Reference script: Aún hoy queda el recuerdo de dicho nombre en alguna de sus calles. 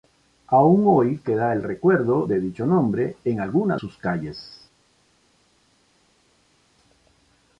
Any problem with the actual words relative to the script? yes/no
yes